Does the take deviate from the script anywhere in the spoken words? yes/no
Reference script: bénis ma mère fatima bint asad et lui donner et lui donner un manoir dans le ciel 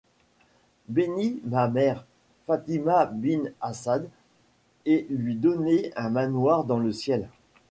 yes